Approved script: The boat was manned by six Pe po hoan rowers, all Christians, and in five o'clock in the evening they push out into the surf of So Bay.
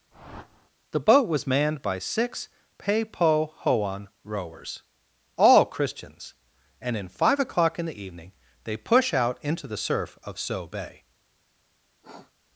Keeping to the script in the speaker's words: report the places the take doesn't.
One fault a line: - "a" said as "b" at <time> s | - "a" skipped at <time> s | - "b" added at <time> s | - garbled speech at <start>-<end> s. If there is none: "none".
none